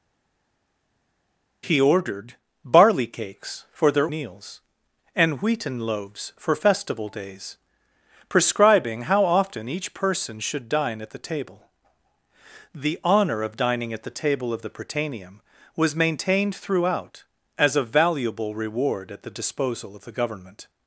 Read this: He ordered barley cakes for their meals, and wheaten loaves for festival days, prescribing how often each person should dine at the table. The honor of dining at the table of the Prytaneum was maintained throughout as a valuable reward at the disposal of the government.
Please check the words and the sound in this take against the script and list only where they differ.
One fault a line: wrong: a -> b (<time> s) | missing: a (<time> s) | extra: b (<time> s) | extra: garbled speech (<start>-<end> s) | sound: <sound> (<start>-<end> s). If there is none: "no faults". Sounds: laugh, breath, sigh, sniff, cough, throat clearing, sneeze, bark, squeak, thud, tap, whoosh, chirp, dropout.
no faults